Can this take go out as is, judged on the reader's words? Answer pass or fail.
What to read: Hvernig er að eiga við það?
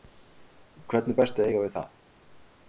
fail